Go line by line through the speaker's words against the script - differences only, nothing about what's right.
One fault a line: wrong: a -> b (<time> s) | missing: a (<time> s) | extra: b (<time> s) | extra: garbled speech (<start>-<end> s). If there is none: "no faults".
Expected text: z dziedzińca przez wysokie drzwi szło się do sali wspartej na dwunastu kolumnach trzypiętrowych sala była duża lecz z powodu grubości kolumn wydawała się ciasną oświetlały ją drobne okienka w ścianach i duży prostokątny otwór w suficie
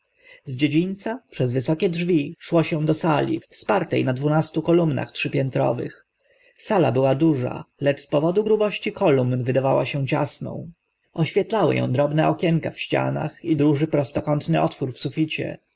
no faults